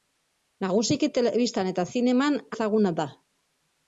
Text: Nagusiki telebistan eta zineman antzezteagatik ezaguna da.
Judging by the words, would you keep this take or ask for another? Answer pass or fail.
fail